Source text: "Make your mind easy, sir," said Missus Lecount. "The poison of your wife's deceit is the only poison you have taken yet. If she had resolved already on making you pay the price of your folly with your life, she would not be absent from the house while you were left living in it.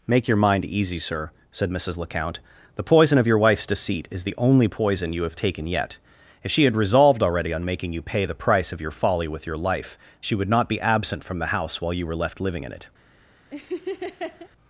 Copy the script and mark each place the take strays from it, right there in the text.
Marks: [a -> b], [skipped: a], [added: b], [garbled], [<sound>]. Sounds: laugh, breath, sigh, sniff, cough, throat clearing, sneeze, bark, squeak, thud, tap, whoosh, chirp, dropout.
"Make your mind easy, sir," said Missus Lecount. "The poison of your wife's deceit is the only poison you have taken yet. If she had resolved already on making you pay the price of your folly with your life, she would not be absent from the house while you were left living in it. [laugh]